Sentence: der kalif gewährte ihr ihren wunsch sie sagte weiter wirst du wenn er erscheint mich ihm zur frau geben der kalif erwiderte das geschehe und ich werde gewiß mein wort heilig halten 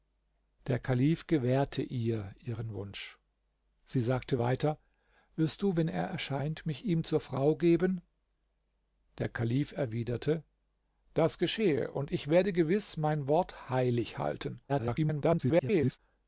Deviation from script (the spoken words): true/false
true